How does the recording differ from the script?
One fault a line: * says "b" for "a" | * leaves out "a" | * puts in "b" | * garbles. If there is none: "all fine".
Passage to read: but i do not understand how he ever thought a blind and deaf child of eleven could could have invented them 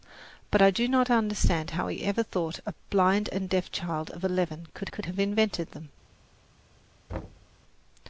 all fine